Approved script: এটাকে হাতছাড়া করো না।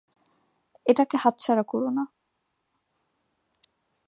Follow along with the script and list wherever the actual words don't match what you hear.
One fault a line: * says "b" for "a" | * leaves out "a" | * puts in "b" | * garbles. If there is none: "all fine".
all fine